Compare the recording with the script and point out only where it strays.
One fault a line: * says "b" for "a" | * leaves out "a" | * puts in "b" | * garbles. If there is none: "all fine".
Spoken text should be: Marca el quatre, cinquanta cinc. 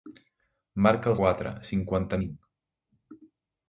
all fine